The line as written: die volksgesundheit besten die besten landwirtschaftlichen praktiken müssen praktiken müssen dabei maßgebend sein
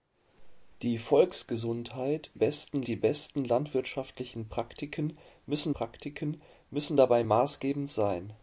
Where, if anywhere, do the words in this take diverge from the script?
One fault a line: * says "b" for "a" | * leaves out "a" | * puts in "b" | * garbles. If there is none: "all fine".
all fine